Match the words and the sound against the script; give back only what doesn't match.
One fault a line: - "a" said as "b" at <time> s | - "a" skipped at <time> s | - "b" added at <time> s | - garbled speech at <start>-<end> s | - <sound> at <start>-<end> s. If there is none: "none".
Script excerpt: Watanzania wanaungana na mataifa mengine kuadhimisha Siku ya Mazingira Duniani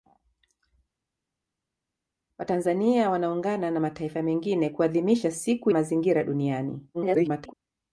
- "ya" skipped at 5.7 s
- garbled speech at 6.9-7.5 s